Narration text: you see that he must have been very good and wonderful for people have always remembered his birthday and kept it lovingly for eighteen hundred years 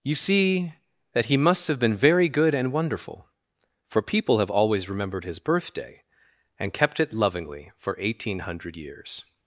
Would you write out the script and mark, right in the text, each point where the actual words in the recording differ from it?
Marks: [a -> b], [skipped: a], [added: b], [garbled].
you see that he must have been very good and wonderful for people have always remembered his birthday and kept it lovingly for eighteen hundred years